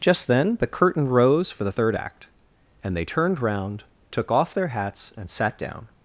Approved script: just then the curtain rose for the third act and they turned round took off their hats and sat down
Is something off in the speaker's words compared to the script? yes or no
no